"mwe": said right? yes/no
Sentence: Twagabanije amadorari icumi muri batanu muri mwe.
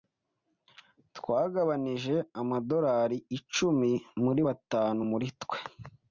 no